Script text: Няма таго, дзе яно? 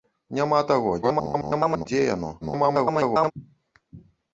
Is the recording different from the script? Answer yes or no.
yes